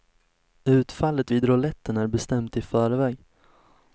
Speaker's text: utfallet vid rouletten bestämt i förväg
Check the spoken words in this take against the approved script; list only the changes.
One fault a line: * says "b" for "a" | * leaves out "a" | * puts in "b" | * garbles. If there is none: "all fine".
* puts in "är"